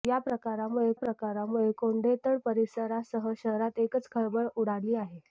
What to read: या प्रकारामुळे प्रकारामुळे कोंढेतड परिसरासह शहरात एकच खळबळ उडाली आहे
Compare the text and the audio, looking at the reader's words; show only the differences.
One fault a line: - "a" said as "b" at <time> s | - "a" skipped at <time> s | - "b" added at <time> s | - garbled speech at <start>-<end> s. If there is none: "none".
none